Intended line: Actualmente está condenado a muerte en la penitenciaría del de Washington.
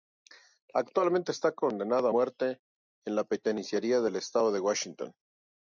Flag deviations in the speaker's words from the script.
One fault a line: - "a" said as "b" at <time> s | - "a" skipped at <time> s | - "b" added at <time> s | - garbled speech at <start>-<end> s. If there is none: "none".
- "estado" added at 4.2 s